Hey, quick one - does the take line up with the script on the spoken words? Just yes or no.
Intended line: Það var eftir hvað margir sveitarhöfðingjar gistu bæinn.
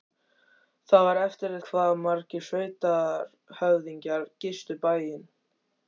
yes